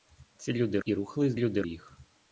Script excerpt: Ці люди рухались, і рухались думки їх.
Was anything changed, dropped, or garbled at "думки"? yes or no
yes